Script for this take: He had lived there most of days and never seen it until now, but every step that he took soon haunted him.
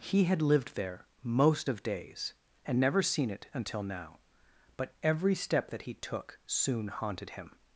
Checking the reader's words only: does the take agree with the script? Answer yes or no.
yes